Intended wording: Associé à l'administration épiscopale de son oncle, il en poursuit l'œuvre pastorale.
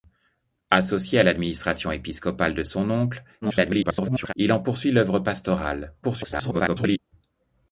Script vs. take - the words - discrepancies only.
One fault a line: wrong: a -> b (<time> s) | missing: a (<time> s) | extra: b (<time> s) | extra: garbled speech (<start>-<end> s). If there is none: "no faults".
extra: garbled speech (3.4-4.3 s)
extra: garbled speech (6.0-7.0 s)